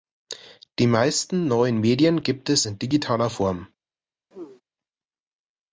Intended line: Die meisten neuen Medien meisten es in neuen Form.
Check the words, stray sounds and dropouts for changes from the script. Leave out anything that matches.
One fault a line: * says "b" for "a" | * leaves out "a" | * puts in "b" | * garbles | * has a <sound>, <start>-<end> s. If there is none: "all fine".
* says "gibt" for "meisten"
* says "digitaler" for "neuen"
* has a throat clearing, 4.3-4.6 s